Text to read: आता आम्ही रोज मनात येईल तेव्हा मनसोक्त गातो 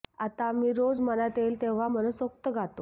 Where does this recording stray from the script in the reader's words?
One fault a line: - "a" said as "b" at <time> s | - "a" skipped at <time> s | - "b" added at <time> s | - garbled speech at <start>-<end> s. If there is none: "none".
none